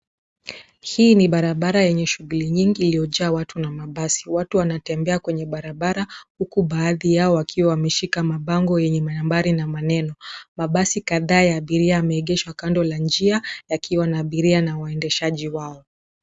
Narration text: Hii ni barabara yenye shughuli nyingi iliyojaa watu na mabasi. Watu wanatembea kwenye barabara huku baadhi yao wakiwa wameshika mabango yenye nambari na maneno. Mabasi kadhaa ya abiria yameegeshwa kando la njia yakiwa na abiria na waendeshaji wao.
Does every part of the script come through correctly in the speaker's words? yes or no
yes